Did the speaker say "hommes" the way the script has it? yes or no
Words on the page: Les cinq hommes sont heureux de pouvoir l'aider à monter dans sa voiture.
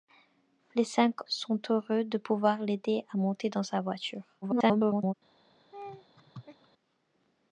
no